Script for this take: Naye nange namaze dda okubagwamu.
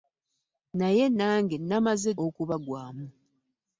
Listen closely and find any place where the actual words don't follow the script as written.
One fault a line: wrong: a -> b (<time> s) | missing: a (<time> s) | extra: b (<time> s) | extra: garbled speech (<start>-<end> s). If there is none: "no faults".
missing: dda (2.1 s)